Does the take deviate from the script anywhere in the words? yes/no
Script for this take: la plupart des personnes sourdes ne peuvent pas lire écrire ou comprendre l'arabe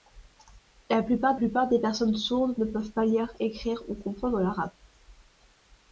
yes